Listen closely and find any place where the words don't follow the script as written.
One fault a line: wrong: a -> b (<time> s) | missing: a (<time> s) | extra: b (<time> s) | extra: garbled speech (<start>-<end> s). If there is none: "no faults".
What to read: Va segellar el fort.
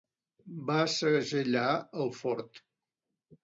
no faults